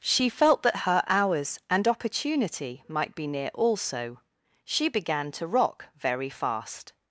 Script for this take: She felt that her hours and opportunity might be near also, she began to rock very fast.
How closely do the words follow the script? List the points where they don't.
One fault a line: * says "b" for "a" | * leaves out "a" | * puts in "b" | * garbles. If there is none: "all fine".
all fine